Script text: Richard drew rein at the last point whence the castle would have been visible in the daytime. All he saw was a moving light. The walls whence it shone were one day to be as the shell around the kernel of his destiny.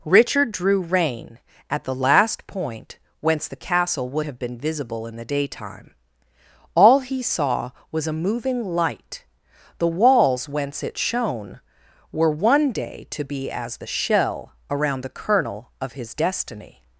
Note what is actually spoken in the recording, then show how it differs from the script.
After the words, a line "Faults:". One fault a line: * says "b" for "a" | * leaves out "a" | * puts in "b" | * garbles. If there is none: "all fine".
Richard drew rein at the last point whence the castle would have been visible in the daytime. All he saw was a moving light. The walls whence it shone were one day to be as the shell around the kernel of his destiny.
Faults:
all fine